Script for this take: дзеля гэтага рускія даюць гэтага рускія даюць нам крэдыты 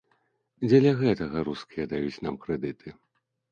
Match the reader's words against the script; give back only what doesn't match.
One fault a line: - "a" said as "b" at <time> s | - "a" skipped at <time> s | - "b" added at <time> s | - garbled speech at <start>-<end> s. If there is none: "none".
- "гэтага рускія даюць" skipped at 2.2 s